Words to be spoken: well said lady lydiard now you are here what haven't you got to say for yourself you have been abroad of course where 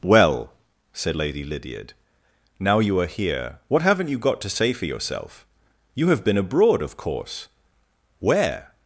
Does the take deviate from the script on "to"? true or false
false